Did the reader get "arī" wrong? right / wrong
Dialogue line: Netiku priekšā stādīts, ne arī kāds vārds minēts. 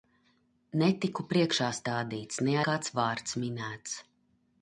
wrong